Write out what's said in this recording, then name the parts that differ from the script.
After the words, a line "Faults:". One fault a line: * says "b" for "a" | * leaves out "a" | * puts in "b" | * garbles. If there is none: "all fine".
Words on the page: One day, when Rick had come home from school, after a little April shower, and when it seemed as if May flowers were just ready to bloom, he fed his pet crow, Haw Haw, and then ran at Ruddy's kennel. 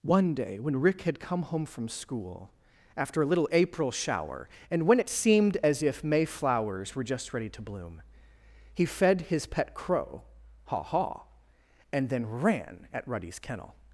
One day, when Rick had come home from school, after a little April shower, and when it seemed as if May flowers were just ready to bloom, he fed his pet crow, Haw Haw, and then ran at Ruddy's kennel.
Faults:
all fine